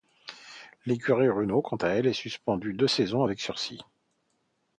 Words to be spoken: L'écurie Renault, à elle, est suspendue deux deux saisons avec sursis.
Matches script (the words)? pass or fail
fail